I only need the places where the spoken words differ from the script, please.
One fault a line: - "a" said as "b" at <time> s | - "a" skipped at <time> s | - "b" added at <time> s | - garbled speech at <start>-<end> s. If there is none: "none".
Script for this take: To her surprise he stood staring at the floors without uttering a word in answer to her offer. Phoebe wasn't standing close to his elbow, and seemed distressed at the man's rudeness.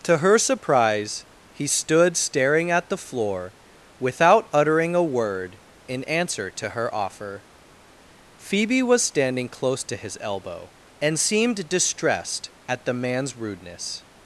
- "floors" said as "floor" at 3.0 s
- "wasn't" said as "was" at 8.8 s